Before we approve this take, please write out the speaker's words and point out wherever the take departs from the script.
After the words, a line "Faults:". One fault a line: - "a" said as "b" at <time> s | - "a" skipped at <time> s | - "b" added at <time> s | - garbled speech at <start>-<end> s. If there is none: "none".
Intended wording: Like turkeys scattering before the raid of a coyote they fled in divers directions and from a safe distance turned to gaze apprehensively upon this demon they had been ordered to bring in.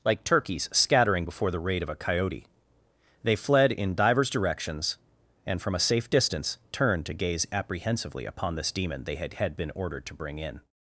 Like turkeys scattering before the raid of a coyote they fled in divers directions and from a safe distance turned to gaze apprehensively upon this demon they had had been ordered to bring in.
Faults:
- "had" added at 9.3 s